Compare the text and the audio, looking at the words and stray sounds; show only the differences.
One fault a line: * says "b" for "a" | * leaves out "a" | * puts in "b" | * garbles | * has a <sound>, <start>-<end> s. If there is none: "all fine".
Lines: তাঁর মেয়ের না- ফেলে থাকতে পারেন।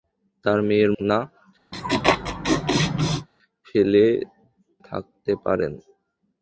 * has a laugh, 1.7-3.3 s